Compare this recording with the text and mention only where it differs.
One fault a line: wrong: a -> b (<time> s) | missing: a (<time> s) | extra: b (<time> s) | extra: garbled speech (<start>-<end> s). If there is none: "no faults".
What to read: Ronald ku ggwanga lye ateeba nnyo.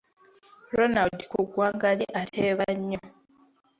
no faults